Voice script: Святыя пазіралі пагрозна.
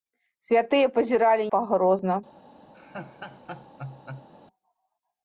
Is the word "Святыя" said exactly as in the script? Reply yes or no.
yes